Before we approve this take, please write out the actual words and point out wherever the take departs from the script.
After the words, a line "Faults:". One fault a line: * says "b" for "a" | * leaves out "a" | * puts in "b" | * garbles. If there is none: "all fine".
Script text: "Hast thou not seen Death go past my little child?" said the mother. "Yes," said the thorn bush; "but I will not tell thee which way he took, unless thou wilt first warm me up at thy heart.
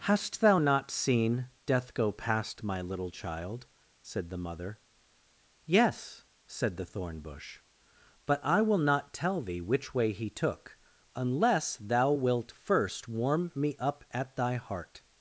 "Hast thou not seen Death go past my little child?" said the mother. "Yes," said the thorn bush; "but I will not tell thee which way he took, unless thou wilt first warm me up at thy heart.
Faults:
all fine